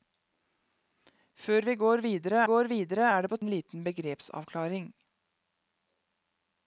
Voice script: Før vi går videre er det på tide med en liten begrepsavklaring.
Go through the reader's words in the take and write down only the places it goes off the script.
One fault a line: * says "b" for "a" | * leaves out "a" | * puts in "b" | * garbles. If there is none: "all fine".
* puts in "går videre"
* leaves out "tide med"